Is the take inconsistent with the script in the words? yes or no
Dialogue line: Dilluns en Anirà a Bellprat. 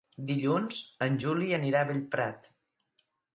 yes